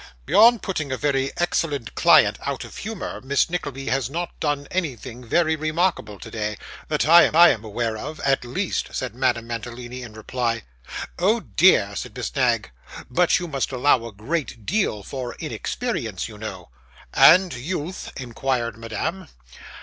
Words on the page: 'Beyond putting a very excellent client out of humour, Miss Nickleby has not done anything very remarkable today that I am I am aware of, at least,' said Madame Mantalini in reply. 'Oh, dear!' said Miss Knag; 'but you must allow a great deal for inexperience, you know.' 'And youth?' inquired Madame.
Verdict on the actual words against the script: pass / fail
pass